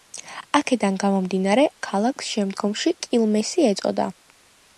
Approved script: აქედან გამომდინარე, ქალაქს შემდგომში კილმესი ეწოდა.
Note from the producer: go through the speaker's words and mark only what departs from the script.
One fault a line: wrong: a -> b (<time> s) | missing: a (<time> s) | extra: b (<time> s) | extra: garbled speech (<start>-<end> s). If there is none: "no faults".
no faults